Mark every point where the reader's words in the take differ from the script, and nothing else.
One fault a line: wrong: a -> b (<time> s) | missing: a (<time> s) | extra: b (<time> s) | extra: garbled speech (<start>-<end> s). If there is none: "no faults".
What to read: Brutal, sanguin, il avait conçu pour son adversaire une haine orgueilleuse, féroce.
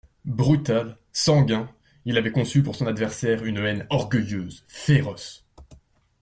no faults